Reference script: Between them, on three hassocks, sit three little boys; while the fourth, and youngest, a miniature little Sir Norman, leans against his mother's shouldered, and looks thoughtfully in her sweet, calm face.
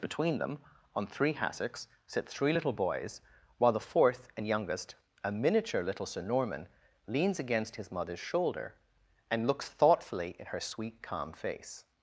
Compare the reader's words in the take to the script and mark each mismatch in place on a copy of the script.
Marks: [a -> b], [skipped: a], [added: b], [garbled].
Between them, on three hassocks, sit three little boys; while the fourth, and youngest, a miniature little Sir Norman, leans against his mother's [shouldered, -> shoulder] and looks thoughtfully in her sweet, calm face.